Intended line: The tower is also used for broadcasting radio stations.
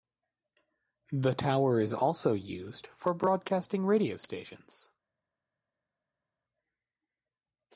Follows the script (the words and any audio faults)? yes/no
yes